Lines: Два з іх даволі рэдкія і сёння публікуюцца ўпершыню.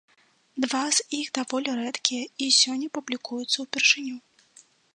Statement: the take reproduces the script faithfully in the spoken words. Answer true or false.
true